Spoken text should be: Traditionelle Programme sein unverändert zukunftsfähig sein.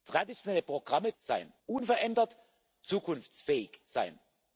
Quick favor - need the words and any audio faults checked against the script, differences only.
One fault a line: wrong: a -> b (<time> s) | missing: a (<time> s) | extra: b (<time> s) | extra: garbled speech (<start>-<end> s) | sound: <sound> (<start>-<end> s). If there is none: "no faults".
no faults